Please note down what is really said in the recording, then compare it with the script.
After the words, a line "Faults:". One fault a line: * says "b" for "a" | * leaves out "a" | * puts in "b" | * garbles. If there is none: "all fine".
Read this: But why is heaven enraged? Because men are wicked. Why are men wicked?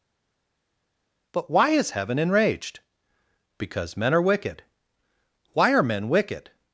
But why is heaven enraged? Because men are wicked. Why are men wicked?
Faults:
all fine